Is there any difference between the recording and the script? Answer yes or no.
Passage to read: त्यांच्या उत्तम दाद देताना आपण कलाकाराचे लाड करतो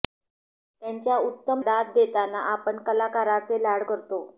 no